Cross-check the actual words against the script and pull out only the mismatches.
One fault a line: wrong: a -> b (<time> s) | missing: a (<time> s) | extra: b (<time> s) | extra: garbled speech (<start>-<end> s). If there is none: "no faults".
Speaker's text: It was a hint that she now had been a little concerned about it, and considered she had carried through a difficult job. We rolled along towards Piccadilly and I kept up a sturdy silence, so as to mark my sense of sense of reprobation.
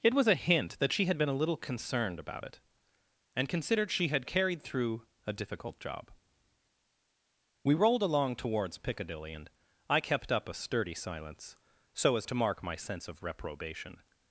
missing: now (1.1 s)
missing: sense of (13.2 s)